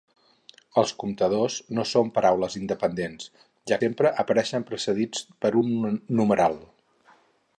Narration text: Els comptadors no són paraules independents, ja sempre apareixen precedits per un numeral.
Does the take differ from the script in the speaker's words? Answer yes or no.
no